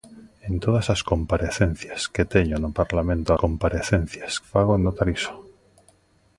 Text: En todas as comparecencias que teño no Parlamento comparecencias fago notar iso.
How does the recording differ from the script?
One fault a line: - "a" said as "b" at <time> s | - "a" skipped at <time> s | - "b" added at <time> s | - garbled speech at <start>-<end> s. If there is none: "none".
none